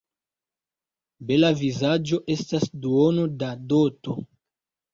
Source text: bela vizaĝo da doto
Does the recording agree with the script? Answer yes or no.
no